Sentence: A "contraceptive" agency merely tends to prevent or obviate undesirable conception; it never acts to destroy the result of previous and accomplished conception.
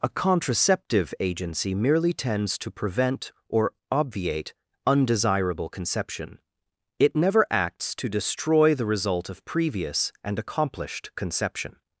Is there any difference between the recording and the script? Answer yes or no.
no